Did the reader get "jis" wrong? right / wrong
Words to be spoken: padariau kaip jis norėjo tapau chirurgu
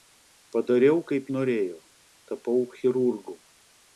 wrong